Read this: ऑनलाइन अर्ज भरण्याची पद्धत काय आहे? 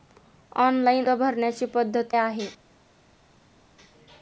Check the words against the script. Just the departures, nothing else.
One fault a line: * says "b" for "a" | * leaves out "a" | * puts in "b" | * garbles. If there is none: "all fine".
* leaves out "अर्ज"
* leaves out "काय"